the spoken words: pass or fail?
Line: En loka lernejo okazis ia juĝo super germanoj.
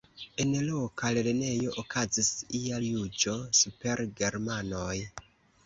pass